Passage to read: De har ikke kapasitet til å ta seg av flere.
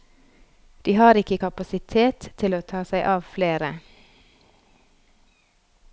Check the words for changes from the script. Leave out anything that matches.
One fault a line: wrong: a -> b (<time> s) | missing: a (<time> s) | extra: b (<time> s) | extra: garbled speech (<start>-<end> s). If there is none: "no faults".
no faults